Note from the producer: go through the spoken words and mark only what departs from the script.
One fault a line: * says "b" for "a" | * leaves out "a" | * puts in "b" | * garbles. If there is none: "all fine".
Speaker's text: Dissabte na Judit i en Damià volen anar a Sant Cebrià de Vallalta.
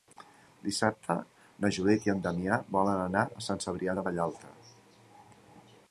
all fine